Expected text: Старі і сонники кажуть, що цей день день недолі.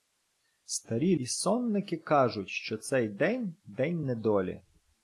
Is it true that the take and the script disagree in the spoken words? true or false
false